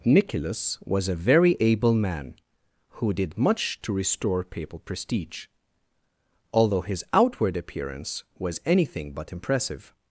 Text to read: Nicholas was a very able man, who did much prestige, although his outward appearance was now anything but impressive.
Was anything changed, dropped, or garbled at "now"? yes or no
yes